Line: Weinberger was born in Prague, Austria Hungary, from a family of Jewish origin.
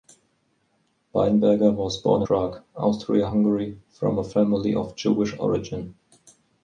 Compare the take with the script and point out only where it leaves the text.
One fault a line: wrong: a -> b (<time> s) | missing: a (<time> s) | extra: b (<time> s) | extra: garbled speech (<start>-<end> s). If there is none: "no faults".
missing: in (2.2 s)